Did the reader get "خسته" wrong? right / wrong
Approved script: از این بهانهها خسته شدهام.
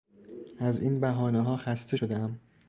right